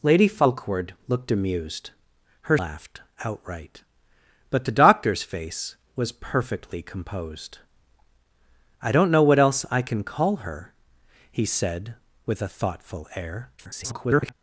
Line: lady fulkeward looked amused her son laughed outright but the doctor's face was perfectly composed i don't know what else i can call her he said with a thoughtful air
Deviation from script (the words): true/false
true